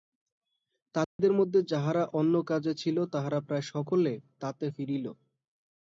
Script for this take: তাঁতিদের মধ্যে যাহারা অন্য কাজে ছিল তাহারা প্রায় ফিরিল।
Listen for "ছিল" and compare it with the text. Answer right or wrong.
right